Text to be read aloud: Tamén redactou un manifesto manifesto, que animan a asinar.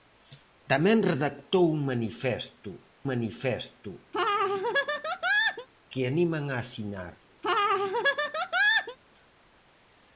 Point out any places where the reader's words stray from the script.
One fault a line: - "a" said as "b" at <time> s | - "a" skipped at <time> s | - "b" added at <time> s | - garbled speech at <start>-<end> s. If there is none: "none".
none